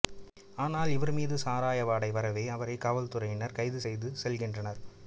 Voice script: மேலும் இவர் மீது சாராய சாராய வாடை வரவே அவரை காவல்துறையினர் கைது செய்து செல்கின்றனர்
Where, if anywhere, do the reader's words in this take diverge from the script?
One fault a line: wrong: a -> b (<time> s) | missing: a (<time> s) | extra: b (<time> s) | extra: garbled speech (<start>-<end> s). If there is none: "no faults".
wrong: மேலும் -> ஆனால் (0.6 s)
missing: சாராய (1.8 s)